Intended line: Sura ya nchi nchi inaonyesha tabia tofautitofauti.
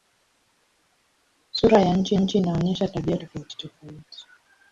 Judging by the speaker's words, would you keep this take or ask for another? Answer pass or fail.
pass